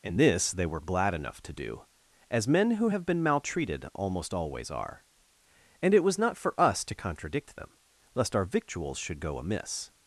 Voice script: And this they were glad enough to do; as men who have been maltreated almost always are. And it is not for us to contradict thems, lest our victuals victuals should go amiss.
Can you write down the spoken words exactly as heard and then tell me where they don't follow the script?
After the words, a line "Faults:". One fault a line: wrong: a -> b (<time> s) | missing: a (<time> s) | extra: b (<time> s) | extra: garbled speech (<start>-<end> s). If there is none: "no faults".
And this they were glad enough to do; as men who have been maltreated almost always are. And it was not for us to contradict them, lest our victuals should go amiss.
Faults:
wrong: is -> was (6.0 s)
wrong: thems -> them (7.6 s)
missing: victuals (9.0 s)